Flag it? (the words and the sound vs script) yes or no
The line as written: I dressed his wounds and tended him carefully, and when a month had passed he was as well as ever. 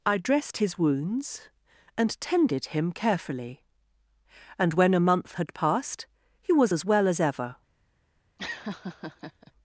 yes